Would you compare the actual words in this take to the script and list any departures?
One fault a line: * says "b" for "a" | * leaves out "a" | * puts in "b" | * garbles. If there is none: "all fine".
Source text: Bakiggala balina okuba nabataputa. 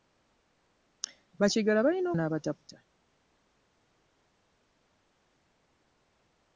* leaves out "okuba"